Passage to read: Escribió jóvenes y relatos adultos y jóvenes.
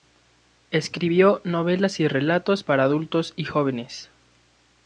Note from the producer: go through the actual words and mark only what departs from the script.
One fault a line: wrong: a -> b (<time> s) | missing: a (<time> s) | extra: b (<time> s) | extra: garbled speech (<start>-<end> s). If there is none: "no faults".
wrong: jóvenes -> novelas (1.4 s)
extra: para (2.6 s)